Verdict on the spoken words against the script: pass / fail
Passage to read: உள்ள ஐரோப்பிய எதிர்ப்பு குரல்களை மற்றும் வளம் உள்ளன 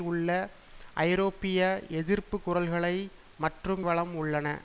pass